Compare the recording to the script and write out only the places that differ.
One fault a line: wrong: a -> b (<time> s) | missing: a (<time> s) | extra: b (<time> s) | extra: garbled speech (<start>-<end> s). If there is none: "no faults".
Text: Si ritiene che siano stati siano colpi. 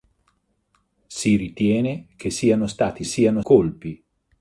no faults